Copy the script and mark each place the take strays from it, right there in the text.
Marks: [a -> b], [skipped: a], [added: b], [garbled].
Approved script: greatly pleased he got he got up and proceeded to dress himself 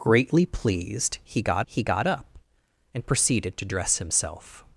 greatly pleased he got he got up and proceeded to dress himself